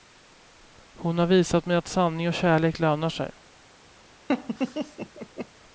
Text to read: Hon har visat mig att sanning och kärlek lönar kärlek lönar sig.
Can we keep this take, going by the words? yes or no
no